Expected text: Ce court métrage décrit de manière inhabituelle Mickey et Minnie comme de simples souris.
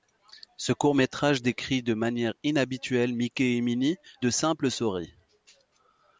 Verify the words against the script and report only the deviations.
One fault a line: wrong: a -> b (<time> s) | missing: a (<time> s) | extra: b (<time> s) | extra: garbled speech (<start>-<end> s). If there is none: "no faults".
missing: comme (4.0 s)